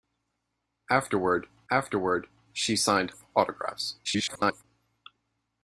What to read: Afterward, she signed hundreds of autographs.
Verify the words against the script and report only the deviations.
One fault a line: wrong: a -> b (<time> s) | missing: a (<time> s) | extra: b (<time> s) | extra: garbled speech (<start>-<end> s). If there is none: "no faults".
extra: afterward (1.7 s)
missing: hundreds (3.1 s)
extra: garbled speech (4.0-4.6 s)